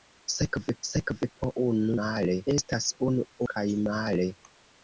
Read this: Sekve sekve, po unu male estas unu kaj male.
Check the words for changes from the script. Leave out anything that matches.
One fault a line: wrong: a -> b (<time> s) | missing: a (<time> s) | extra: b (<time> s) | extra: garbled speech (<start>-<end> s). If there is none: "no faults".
no faults